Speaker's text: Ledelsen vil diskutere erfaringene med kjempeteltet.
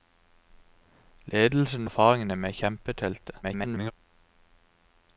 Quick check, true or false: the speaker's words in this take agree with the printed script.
false